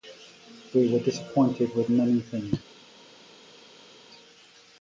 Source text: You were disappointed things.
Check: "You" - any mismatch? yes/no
yes